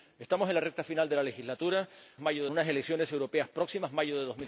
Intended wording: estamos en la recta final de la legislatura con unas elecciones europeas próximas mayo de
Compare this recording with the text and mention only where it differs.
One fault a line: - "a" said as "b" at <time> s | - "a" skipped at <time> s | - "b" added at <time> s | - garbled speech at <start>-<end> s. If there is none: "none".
- "con" said as "mayo" at 2.2 s